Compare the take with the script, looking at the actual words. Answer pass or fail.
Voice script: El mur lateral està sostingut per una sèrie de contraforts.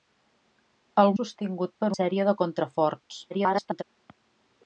fail